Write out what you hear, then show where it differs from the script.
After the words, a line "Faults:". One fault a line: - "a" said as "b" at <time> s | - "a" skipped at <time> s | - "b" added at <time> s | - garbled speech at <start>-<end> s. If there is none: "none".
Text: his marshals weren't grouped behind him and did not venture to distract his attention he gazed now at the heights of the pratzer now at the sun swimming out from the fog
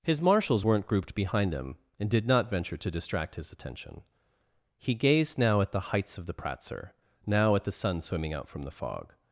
his marshals weren't grouped behind him and did not venture to distract his attention he gazed now at the heights of the pratzer now at the sun swimming out from the fog
Faults:
none